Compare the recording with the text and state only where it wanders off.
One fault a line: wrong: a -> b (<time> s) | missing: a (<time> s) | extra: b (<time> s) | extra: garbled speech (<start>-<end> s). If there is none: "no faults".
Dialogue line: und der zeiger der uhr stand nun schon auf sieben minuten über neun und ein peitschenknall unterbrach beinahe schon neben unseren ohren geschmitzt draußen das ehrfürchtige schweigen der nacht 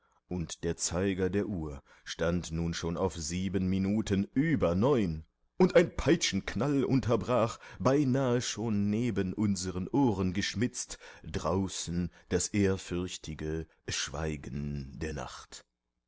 no faults